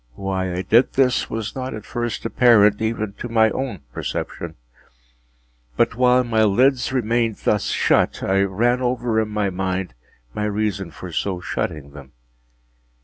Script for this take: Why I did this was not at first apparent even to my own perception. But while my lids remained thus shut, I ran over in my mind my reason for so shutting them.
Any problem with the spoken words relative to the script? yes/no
no